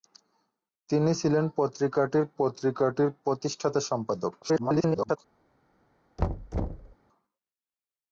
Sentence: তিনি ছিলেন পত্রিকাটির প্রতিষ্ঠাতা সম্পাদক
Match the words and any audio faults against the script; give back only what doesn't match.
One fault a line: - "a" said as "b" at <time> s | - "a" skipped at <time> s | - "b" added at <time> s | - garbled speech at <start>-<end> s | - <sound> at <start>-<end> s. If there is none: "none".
- "পত্রিকাটির" added at 2.4 s
- garbled speech at 4.4-5.2 s
- thud at 6.2-7.0 s